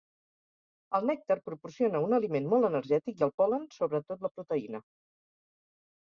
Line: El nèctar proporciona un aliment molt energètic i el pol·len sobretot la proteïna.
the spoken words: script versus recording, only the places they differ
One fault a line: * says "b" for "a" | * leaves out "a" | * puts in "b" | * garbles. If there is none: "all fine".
all fine